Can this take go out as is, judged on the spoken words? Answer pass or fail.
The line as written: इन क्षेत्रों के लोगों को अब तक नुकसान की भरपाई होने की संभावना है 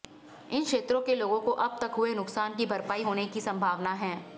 fail